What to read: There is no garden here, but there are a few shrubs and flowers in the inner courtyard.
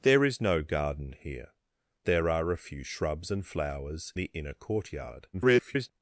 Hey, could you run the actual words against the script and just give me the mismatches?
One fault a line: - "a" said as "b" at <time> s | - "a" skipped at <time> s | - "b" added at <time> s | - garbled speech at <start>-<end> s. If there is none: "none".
- "but" skipped at 1.5 s
- "in" skipped at 4.1 s
- garbled speech at 5.3-5.9 s